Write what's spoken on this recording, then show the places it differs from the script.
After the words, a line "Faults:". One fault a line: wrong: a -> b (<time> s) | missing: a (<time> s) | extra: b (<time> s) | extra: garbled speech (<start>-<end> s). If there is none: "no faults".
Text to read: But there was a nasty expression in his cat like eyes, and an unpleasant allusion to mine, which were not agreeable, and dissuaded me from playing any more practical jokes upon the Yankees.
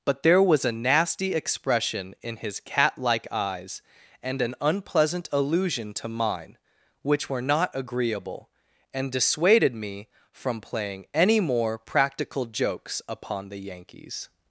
But there was a nasty expression in his cat like eyes, and an unpleasant allusion to mine, which were not agreeable, and dissuaded me from playing any more practical jokes upon the Yankees.
Faults:
no faults